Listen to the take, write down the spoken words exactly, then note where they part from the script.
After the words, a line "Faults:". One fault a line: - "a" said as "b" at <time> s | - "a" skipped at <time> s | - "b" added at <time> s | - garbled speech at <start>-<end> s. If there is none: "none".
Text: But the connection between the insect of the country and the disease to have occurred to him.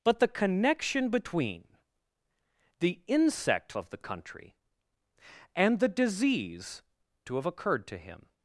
But the connection between the insect of the country and the disease to have occurred to him.
Faults:
none